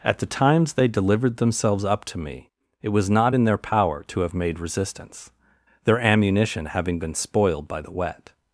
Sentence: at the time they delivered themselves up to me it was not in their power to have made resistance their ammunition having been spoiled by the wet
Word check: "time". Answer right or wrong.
wrong